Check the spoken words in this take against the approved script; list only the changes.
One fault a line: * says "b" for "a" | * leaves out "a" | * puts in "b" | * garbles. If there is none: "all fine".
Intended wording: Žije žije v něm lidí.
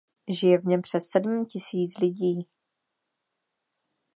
* leaves out "žije"
* puts in "přes sedm tisíc"